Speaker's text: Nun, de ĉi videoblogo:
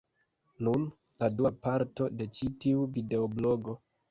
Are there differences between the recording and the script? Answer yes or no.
yes